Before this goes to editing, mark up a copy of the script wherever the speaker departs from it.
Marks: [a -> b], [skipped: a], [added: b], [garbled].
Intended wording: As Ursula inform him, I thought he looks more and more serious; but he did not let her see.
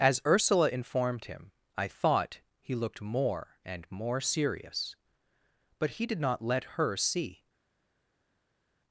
As Ursula [inform -> informed] him, I thought he [looks -> looked] more and more serious; but he did not let her see.